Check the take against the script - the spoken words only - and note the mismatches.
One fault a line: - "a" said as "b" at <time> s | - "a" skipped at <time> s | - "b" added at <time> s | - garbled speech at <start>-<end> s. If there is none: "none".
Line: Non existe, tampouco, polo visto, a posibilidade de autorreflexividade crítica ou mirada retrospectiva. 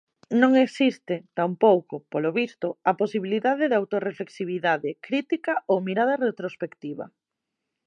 none